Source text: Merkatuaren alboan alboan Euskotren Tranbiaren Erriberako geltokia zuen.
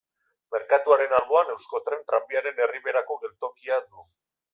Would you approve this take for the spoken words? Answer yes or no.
no